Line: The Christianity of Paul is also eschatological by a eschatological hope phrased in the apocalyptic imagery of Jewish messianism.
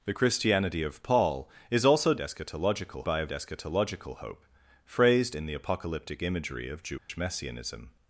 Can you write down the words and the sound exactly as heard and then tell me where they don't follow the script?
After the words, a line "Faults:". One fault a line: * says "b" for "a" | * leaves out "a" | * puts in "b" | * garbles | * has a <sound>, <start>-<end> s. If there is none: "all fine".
The Christianity of Paul is also eschatological by a eschatological hope phrased in the apocalyptic imagery of Jewish messianism.
Faults:
* has a dropout, 7.0-7.1 s